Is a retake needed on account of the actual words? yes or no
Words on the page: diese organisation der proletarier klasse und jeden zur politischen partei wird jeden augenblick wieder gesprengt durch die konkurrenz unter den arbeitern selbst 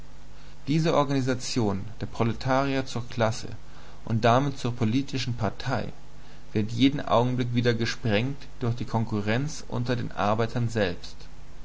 yes